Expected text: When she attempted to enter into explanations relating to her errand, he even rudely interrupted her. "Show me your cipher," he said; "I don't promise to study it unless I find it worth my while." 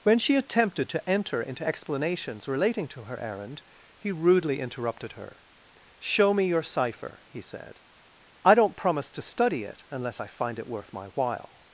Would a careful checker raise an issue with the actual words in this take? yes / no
yes